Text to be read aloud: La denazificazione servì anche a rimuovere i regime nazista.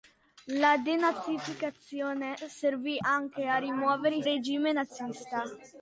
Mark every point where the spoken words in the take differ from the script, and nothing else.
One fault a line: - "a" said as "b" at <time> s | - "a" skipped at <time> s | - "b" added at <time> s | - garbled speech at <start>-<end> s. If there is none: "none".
none